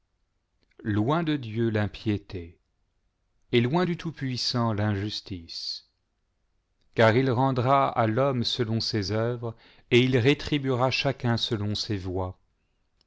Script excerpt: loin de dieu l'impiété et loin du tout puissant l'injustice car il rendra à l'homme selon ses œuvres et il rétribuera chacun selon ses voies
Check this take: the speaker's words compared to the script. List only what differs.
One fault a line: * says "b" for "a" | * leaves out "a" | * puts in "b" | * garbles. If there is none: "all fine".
all fine